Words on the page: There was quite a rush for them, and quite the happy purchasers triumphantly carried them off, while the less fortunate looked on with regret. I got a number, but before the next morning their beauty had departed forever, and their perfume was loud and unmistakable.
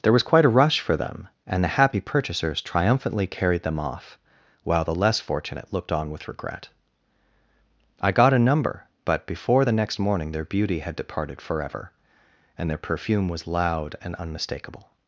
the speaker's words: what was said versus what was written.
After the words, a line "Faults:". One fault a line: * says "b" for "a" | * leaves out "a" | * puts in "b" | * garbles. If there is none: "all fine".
There was quite a rush for them, and the happy purchasers triumphantly carried them off, while the less fortunate looked on with regret. I got a number, but before the next morning their beauty had departed forever, and their perfume was loud and unmistakable.
Faults:
* leaves out "quite"